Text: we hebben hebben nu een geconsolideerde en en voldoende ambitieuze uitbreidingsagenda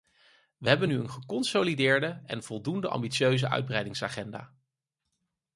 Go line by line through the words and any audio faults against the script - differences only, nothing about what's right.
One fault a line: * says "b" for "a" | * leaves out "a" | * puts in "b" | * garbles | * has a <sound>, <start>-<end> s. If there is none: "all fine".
* leaves out "hebben"
* leaves out "en"